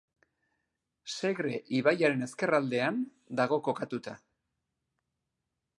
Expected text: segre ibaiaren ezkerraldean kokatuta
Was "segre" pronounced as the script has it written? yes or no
yes